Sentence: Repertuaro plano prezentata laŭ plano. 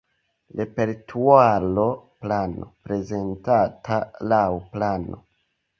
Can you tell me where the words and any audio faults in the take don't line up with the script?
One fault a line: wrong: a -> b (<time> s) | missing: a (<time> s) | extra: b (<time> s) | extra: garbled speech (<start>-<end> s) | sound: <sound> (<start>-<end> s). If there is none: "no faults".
no faults